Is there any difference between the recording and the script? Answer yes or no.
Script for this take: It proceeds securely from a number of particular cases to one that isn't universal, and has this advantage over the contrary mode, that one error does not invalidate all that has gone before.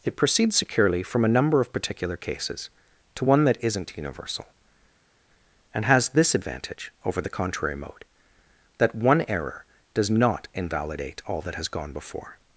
no